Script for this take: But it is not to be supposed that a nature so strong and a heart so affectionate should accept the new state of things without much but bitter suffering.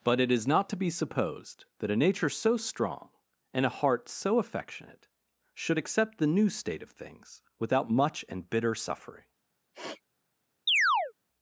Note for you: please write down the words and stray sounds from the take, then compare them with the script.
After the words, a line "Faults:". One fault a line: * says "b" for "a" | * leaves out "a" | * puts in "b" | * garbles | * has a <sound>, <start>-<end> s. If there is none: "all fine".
But it is not to be supposed that a nature so strong and a heart so affectionate should accept the new state of things without much and bitter suffering.
Faults:
* says "and" for "but"
* has a sniff, 9.7-10.0 s
* has a chirp, 10.7-11.1 s